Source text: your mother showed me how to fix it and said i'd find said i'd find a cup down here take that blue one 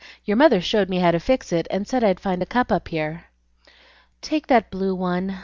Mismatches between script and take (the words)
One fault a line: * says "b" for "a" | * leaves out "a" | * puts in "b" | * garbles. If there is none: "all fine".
* leaves out "said i'd find"
* says "up" for "down"